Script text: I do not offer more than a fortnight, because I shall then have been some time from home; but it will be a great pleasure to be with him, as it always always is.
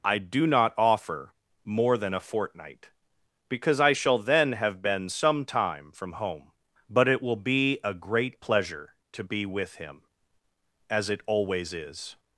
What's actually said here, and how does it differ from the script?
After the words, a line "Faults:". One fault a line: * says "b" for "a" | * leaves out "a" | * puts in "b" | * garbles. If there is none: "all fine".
I do not offer more than a fortnight, because I shall then have been some time from home; but it will be a great pleasure to be with him, as it always is.
Faults:
* leaves out "always"